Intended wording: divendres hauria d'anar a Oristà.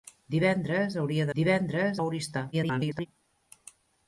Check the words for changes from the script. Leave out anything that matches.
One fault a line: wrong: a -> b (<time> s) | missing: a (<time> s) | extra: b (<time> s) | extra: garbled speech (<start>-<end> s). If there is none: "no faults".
wrong: d'anar -> divendres (1.4 s)
extra: garbled speech (2.5-3.1 s)